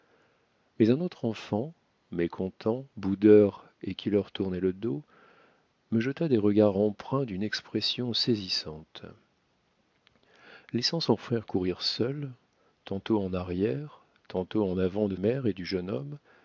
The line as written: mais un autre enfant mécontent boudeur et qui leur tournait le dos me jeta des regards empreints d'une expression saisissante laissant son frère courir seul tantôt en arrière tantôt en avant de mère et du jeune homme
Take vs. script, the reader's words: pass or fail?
pass